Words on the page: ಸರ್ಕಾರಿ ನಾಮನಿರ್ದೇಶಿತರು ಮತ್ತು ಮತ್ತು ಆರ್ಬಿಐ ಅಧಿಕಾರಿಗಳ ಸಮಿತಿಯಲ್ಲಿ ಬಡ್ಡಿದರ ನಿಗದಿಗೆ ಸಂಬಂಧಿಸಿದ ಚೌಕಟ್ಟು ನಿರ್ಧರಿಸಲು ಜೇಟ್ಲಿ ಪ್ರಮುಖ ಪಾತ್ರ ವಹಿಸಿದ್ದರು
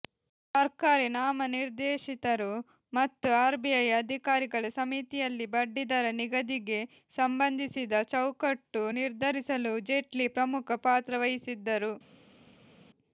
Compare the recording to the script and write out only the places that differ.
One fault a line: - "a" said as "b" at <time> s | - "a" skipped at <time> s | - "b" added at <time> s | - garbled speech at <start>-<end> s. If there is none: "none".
- "ಮತ್ತು" skipped at 3.3 s